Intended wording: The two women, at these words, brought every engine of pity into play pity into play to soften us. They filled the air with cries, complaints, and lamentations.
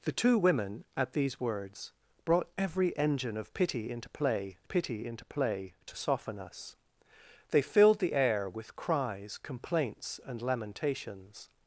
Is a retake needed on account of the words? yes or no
no